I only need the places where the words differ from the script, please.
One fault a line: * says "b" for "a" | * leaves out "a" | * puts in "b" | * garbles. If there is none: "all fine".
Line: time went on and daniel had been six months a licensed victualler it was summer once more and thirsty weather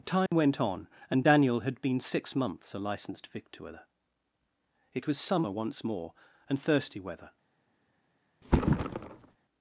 all fine